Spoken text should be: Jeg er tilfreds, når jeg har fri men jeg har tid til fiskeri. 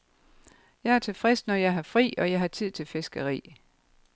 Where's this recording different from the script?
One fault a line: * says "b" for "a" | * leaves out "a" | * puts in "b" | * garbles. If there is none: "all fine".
* says "og" for "men"